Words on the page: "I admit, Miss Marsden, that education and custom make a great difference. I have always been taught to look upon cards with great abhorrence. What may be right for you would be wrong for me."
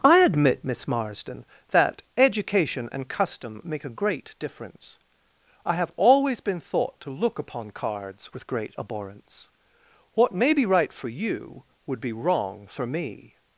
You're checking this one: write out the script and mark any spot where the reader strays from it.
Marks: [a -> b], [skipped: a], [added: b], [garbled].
"I admit, Miss Marsden, that education and custom make a great difference. I have always been [taught -> thought] to look upon cards with great abhorrence. What may be right for you would be wrong for me."